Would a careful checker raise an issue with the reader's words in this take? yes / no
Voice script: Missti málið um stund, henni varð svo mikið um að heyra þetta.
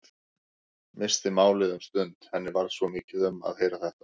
no